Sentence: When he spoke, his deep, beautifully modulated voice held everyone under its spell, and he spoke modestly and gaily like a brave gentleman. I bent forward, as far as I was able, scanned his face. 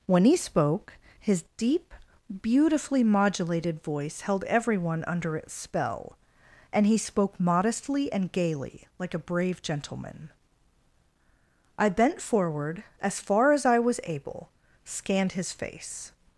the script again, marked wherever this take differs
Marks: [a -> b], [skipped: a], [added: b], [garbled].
When he spoke, his deep, beautifully modulated voice held everyone under its spell, and he spoke modestly and gaily like a brave gentleman. I bent forward, as far as I was able, scanned his face.